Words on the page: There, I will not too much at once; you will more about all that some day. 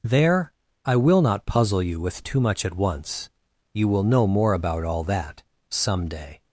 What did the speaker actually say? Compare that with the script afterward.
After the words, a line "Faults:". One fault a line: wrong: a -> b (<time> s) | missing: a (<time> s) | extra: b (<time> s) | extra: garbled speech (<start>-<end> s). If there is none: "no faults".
There, I will not puzzle you with too much at once; you will know more about all that some day.
Faults:
extra: puzzle you with (1.4 s)
extra: know (4.0 s)